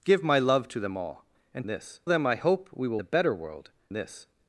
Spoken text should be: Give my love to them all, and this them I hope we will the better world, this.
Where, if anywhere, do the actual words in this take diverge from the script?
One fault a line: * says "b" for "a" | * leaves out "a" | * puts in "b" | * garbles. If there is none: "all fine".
all fine